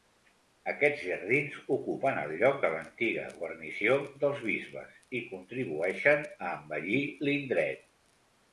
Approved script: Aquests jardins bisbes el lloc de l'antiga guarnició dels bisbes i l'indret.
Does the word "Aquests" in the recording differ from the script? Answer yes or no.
no